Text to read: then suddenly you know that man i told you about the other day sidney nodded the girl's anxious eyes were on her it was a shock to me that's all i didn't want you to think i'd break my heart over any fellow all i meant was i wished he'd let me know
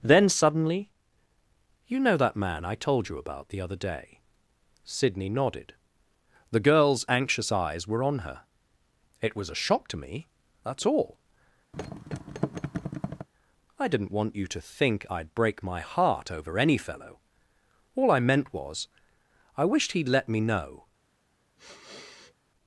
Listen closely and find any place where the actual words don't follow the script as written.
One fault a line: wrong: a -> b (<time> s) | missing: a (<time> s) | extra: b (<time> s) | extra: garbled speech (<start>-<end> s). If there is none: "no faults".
no faults